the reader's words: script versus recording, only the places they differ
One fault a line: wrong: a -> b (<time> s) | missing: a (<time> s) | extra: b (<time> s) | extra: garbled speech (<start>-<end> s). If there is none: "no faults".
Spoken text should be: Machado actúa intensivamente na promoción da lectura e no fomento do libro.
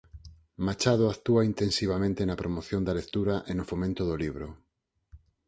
no faults